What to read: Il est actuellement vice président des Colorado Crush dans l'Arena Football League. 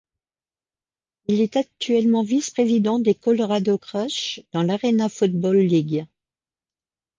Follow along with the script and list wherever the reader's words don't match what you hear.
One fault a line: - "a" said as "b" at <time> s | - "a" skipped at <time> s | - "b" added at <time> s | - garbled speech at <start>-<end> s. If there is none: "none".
none